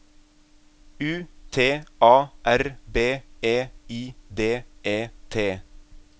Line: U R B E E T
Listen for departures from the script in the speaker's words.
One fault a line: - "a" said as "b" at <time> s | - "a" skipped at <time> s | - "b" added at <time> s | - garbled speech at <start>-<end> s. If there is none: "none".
- "T A" added at 1.5 s
- "I D" added at 3.9 s